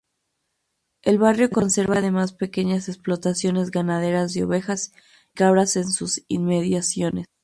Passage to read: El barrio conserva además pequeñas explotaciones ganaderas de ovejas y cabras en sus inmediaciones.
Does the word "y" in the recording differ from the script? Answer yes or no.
yes